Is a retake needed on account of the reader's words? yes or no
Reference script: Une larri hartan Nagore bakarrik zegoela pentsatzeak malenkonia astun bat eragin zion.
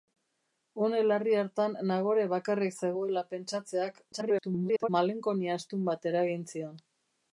yes